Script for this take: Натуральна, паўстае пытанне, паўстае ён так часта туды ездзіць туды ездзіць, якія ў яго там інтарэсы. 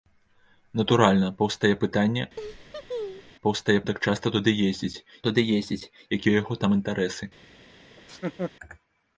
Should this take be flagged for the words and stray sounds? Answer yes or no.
yes